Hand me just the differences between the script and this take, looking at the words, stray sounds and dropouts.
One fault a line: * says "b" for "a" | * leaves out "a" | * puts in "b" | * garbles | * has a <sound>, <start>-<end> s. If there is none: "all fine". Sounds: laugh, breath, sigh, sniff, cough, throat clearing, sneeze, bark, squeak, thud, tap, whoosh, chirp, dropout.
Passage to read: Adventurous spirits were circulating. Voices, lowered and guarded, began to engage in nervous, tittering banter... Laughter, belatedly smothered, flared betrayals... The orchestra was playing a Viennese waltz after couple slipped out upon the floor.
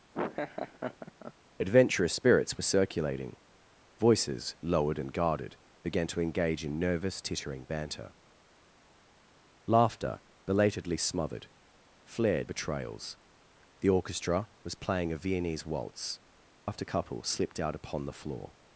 * has a laugh, 0.1-1.3 s